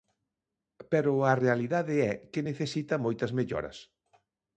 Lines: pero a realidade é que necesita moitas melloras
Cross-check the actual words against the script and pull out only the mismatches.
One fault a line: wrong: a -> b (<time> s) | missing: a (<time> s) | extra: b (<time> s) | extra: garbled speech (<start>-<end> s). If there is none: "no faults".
no faults